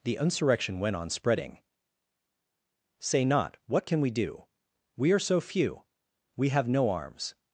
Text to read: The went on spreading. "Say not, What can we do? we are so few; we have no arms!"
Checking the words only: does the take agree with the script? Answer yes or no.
no